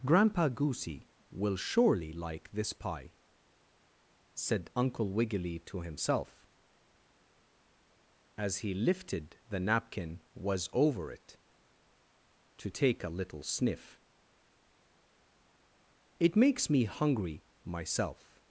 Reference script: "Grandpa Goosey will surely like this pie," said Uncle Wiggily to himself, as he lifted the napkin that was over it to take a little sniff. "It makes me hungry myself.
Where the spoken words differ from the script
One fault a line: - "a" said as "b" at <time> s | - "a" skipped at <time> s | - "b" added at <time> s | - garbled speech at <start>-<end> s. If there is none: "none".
- "that" skipped at 10.2 s